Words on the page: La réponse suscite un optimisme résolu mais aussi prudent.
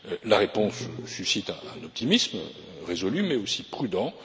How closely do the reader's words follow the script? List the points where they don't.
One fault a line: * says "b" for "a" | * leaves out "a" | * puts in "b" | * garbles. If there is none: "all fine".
all fine